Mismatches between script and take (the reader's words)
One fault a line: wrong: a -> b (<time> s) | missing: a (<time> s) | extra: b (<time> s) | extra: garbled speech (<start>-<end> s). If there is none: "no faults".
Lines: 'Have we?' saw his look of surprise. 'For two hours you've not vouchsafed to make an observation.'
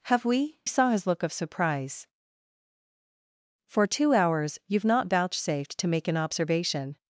no faults